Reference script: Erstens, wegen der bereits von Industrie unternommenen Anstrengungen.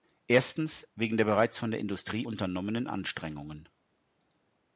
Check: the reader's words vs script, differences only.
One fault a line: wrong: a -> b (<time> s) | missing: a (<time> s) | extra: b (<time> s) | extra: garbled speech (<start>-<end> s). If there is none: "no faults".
extra: der (1.7 s)